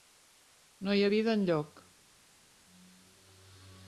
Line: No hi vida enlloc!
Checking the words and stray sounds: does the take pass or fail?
pass